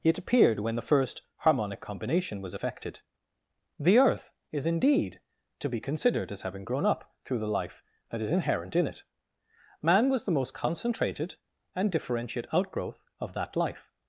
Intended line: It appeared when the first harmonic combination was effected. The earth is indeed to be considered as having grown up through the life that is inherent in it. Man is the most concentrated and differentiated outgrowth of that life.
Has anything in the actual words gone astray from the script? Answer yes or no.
yes